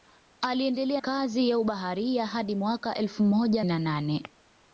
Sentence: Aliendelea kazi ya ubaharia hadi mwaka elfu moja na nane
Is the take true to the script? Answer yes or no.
yes